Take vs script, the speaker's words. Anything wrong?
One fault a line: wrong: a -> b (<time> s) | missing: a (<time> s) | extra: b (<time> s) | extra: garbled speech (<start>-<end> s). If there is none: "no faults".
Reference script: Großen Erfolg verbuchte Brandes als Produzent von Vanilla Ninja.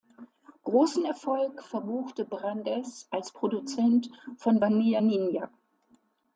no faults